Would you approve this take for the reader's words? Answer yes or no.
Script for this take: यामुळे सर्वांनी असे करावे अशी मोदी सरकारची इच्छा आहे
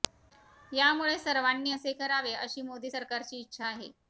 yes